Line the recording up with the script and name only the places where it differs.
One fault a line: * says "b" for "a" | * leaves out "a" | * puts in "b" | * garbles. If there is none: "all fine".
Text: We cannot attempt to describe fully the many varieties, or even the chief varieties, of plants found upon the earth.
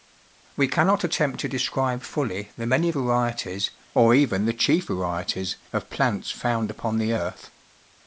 all fine